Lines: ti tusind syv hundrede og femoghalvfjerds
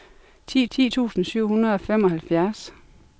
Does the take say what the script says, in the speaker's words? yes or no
no